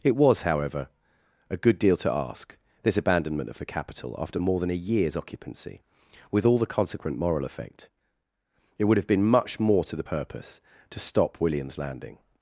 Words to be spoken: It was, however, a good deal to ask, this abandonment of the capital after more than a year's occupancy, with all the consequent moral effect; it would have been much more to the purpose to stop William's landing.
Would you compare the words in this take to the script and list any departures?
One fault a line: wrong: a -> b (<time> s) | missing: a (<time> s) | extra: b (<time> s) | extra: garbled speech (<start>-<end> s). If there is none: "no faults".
no faults